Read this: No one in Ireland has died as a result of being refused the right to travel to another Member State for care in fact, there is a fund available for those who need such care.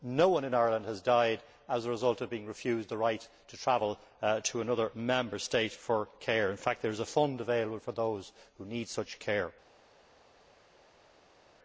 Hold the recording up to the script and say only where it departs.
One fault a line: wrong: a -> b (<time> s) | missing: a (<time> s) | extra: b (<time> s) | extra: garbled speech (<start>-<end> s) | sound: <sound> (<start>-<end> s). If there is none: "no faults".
no faults